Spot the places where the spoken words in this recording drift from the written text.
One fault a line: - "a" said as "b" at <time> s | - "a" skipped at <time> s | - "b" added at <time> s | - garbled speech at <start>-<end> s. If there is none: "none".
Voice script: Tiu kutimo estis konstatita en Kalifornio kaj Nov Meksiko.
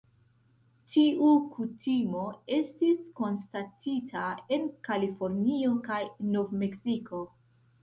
none